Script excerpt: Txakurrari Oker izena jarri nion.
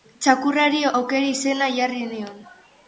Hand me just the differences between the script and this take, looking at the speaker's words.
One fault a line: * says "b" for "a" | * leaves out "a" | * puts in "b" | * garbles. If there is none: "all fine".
all fine